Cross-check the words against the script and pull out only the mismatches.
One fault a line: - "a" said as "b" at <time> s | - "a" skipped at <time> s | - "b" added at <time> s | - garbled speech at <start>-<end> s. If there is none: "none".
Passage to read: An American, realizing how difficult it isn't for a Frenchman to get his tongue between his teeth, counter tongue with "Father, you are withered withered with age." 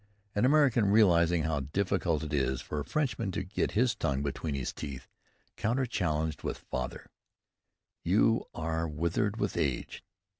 - "isn't" said as "is" at 2.3 s
- "tongue" said as "challenged" at 5.8 s
- "withered" skipped at 9.4 s